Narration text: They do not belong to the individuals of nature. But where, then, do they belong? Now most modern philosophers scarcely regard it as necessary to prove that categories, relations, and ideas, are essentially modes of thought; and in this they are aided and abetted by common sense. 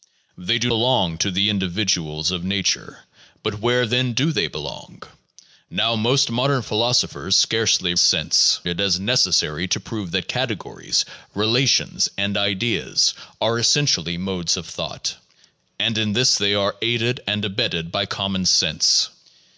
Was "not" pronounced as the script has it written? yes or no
no